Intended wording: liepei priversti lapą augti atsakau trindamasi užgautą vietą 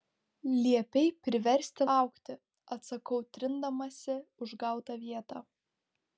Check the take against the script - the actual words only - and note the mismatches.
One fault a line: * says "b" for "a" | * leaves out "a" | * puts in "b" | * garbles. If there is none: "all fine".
* leaves out "lapą"